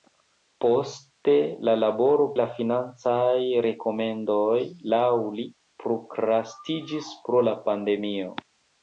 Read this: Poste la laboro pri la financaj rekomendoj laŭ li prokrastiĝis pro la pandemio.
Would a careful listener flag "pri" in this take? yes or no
yes